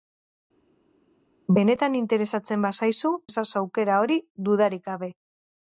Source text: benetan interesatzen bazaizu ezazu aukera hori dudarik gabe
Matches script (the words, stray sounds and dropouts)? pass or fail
pass